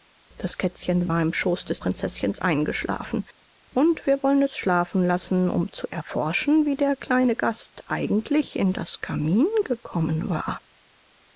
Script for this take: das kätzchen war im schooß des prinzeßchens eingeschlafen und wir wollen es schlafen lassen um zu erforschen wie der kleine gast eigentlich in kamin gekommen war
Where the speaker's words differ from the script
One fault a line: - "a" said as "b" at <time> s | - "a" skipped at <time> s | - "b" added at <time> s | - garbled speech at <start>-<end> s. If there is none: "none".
- "das" added at 8.7 s